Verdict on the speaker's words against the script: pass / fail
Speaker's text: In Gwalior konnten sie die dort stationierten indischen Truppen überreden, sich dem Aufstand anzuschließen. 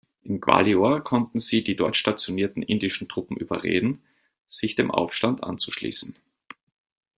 pass